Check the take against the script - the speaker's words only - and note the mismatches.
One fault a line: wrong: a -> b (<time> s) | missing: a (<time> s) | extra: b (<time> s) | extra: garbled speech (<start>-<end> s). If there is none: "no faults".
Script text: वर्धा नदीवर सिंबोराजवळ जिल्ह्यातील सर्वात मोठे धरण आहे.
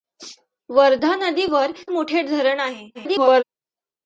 missing: सिंबोराजवळ जिल्ह्यातील सर्वात (1.7 s)
extra: garbled speech (2.9-3.4 s)